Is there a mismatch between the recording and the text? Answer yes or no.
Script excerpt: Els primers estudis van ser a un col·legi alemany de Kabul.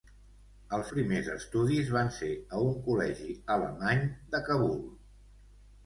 no